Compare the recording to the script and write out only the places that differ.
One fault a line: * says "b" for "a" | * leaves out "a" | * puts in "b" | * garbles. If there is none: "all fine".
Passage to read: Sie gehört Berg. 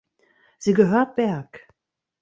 all fine